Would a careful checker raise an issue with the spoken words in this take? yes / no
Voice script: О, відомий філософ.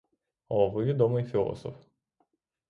yes